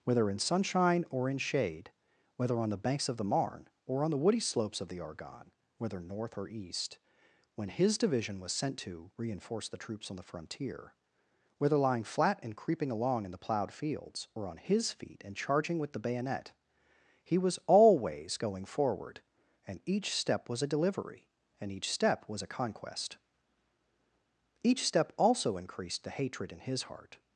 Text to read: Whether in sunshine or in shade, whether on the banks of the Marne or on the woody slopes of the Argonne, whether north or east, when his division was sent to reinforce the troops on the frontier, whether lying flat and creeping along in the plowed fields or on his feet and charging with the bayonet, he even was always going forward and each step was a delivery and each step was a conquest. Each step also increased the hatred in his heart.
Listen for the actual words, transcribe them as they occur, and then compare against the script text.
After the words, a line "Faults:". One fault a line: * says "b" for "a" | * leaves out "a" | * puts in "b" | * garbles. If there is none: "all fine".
Whether in sunshine or in shade, whether on the banks of the Marne or on the woody slopes of the Argonne, whether north or east, when his division was sent to reinforce the troops on the frontier, whether lying flat and creeping along in the plowed fields or on his feet and charging with the bayonet, he was always going forward and each step was a delivery and each step was a conquest. Each step also increased the hatred in his heart.
Faults:
* leaves out "even"